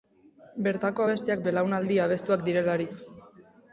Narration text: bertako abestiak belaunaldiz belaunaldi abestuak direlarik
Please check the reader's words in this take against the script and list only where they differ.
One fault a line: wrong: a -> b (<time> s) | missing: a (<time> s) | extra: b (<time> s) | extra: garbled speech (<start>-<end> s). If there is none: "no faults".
missing: belaunaldiz (1.4 s)